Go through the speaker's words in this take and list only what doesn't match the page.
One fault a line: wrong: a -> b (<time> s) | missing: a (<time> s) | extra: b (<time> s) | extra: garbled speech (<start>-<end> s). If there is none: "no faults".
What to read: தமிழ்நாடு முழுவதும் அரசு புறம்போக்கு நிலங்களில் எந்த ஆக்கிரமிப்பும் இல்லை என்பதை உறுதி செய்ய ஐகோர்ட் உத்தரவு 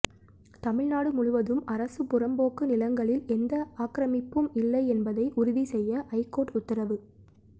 no faults